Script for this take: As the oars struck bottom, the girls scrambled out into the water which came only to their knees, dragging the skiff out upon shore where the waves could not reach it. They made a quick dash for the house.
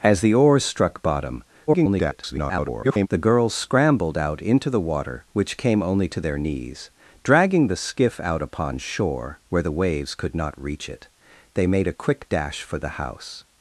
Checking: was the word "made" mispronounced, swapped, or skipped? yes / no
no